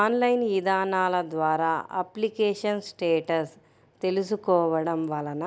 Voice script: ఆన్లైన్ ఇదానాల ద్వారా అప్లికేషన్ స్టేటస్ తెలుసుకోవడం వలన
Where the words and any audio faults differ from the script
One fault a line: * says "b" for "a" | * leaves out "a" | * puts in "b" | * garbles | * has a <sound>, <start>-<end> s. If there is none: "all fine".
all fine